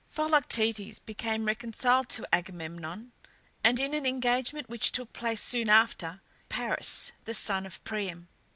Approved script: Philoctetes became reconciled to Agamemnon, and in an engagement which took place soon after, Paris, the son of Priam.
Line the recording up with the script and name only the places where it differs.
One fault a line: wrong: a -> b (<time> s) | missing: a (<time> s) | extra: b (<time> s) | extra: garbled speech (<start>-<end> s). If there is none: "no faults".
no faults